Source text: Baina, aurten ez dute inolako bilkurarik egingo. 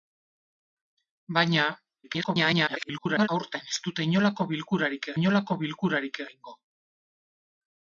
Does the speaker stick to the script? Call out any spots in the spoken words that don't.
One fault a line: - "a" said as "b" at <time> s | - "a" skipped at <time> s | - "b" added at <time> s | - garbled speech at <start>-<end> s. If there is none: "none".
- garbled speech at 2.0-3.3 s
- "inolako bilkurarik" added at 5.2 s